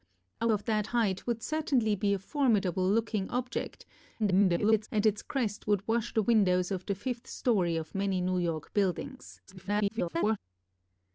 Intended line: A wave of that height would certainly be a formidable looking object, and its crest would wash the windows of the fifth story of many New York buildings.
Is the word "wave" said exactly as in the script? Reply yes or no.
no